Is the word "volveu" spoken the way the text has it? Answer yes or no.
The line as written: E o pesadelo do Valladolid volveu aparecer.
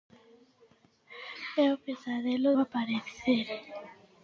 no